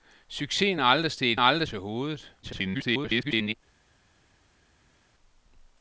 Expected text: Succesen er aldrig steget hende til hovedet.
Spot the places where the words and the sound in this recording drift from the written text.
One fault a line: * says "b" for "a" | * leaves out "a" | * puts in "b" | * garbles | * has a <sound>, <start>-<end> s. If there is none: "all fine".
* says "aldrig" for "hende"
* garbles